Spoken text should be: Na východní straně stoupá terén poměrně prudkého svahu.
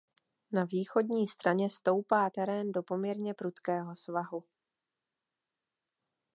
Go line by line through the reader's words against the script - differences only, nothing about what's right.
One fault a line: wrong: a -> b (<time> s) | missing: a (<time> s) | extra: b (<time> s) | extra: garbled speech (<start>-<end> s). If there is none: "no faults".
extra: do (2.7 s)